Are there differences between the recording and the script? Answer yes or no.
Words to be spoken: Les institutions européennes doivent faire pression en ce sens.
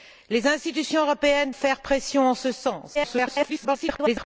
yes